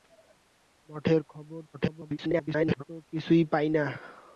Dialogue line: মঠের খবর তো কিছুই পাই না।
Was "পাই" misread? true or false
false